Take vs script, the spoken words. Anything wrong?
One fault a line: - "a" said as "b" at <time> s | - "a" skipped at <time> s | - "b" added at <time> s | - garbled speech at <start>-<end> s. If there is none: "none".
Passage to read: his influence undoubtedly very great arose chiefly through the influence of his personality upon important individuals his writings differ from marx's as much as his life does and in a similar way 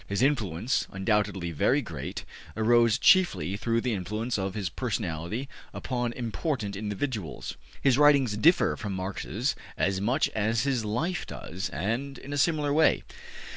none